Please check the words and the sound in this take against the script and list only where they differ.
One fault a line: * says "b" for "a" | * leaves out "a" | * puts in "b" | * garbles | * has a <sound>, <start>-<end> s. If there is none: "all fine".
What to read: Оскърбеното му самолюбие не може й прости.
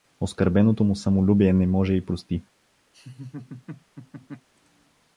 * has a laugh, 2.9-4.5 s